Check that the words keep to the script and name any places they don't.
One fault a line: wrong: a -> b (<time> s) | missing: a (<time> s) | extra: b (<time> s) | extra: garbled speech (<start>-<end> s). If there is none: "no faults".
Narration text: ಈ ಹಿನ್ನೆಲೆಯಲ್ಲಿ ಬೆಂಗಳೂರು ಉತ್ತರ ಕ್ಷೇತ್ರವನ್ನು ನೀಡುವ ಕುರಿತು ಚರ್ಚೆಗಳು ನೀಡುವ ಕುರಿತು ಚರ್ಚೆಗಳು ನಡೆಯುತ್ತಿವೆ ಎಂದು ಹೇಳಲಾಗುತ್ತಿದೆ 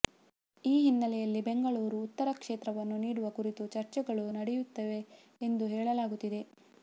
missing: ನೀಡುವ ಕುರಿತು ಚರ್ಚೆಗಳು (4.2 s)